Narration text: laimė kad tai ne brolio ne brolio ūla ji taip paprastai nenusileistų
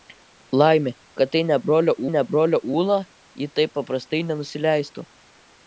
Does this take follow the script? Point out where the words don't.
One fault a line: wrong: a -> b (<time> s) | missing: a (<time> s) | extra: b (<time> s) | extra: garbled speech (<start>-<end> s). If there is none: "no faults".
no faults